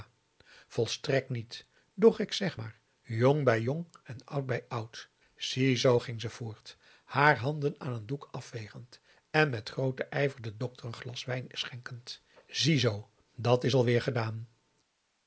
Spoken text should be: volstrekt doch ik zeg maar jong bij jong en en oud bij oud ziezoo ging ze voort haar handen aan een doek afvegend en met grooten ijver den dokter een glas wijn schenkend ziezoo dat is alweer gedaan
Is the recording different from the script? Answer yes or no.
yes